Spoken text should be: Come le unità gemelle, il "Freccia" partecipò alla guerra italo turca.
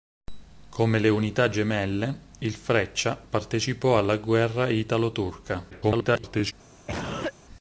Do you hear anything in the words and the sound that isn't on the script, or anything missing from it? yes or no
yes